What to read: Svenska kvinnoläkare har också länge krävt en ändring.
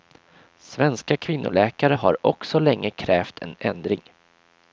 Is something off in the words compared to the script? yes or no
no